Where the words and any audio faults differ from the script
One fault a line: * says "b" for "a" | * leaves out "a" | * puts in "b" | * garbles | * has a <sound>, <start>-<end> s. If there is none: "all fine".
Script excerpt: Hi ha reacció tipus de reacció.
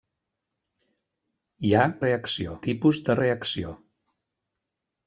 all fine